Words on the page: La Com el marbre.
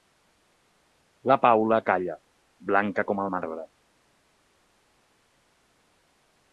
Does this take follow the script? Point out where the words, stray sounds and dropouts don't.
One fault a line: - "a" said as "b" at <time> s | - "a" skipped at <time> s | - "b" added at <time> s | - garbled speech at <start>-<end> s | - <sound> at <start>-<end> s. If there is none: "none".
- "Paula calla blanca" added at 1.4 s